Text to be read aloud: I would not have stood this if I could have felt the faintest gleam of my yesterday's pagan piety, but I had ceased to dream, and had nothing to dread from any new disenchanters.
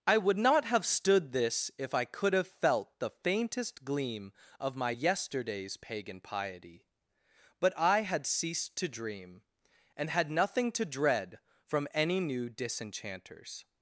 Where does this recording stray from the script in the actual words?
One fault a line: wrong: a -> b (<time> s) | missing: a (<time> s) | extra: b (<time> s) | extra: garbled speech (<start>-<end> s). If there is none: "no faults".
no faults